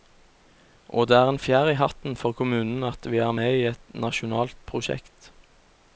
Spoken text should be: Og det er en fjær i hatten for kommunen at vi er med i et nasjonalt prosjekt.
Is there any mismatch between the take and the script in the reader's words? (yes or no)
no